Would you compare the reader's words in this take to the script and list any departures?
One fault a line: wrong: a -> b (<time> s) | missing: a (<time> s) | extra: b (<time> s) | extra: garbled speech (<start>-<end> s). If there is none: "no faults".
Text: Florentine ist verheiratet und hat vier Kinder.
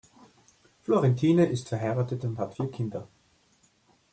no faults